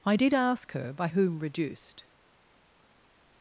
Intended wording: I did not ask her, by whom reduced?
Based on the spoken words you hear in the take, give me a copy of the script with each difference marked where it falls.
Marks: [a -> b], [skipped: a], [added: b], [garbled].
I did [skipped: not] ask her, by whom reduced?